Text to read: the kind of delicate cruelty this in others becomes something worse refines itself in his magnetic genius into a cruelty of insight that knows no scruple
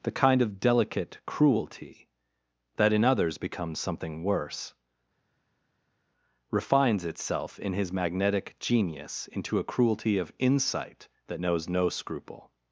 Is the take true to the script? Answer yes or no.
no